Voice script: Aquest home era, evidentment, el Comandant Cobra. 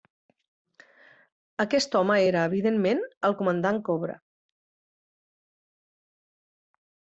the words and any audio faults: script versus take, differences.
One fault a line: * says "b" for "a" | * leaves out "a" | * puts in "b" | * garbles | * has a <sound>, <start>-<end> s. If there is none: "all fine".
all fine